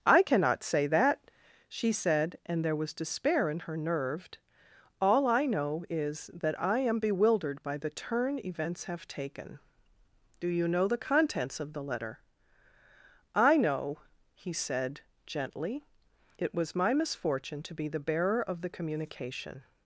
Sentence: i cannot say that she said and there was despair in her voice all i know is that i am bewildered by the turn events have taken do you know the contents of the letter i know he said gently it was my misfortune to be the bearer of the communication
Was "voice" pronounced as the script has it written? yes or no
no